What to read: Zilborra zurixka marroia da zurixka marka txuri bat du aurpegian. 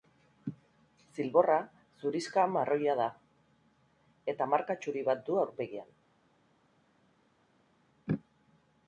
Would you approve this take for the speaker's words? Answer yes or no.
no